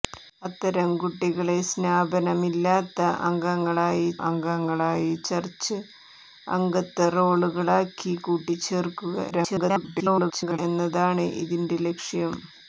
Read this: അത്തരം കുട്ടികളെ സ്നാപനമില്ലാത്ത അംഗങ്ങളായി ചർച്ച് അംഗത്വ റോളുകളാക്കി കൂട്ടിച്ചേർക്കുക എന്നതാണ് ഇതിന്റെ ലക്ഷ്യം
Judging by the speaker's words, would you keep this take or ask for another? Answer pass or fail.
fail